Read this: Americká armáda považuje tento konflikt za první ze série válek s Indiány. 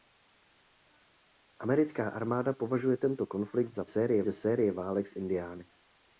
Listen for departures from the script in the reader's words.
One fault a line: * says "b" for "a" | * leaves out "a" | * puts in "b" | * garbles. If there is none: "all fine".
* says "série" for "první"